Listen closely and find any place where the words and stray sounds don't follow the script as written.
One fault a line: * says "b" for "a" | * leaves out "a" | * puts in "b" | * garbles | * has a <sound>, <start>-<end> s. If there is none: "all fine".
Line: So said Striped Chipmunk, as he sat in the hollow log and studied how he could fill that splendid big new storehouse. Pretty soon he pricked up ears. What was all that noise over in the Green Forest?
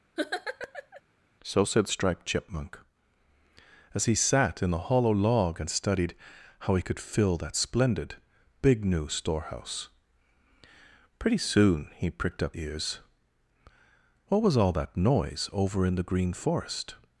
* has a laugh, 0.2-1.0 s